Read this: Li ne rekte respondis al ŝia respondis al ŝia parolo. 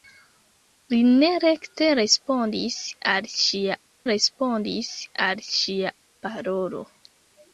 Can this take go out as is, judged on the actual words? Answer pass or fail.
pass